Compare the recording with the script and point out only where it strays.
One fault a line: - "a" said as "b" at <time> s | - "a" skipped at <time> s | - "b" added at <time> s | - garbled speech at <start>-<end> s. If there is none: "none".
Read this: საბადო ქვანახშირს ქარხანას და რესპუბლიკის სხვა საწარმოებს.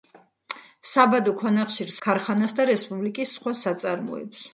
none